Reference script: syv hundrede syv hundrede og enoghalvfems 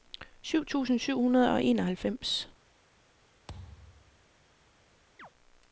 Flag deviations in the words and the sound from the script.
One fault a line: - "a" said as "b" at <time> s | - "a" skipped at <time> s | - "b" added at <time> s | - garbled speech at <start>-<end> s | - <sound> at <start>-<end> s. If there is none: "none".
- "hundrede" said as "tusind" at 0.6 s
- thud at 3.5-4.3 s
- chirp at 5.2-5.3 s